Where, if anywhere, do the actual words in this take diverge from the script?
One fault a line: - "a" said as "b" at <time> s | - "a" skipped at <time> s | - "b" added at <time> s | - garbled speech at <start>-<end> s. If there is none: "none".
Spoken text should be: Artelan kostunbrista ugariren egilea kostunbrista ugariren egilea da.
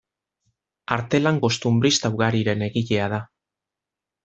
- "kostunbrista ugariren egilea" skipped at 3.1 s